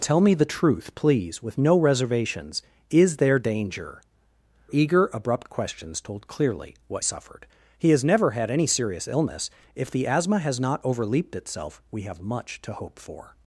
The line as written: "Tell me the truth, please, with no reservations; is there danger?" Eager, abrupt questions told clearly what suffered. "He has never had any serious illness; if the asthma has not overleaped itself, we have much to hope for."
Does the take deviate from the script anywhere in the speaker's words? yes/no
no